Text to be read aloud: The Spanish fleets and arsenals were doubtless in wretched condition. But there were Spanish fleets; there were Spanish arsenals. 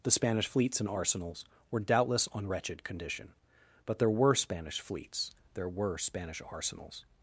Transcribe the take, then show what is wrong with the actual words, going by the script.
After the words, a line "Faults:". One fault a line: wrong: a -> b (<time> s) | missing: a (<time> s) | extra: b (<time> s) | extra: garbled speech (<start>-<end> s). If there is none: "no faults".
The Spanish fleets and arsenals were doubtless on wretched condition. But there were Spanish fleets; there were Spanish arsenals.
Faults:
wrong: in -> on (2.3 s)